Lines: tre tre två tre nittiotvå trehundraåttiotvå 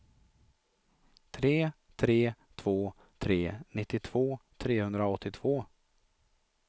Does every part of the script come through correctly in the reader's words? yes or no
yes